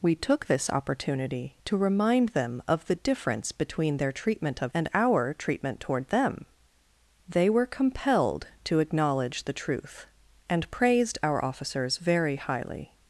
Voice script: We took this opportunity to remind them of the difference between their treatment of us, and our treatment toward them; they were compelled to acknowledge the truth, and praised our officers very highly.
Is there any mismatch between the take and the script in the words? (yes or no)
yes